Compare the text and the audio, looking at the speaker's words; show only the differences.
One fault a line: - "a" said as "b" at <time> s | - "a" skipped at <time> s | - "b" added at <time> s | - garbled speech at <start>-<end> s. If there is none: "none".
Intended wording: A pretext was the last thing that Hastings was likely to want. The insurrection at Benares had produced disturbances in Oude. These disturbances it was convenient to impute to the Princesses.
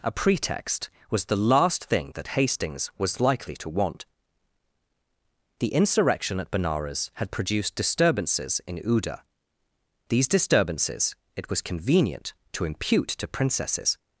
- "the" skipped at 13.3 s